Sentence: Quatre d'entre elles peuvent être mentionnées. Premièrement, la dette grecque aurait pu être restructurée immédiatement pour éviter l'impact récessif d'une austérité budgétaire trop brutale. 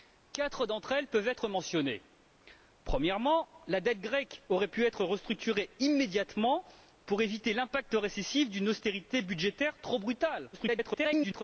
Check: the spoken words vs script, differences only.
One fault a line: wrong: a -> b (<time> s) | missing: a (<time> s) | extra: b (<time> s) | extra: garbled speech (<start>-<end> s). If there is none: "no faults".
extra: garbled speech (10.5-11.4 s)